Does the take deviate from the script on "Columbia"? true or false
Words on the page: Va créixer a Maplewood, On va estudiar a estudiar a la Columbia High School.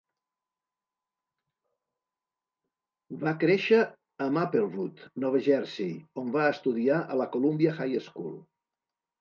false